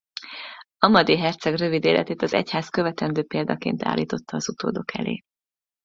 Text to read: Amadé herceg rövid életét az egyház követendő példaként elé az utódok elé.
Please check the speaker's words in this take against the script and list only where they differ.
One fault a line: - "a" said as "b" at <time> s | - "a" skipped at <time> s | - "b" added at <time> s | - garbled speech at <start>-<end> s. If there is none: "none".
- "elé" said as "állította" at 3.8 s